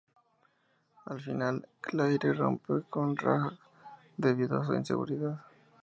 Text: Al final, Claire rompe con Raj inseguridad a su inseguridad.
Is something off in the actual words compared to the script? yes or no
yes